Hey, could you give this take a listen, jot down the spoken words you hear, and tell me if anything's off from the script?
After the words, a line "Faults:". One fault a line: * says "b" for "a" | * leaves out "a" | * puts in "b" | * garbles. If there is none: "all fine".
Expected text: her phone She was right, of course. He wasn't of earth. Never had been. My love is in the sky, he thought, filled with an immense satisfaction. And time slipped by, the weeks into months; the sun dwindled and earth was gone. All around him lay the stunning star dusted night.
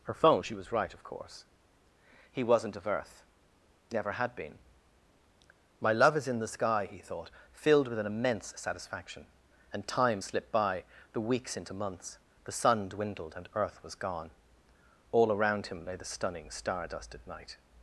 her phone She was right, of course. He wasn't of earth. Never had been. My love is in the sky, he thought, filled with an immense satisfaction. And time slipped by, the weeks into months; the sun dwindled and earth was gone. All around him lay the stunning star dusted night.
Faults:
all fine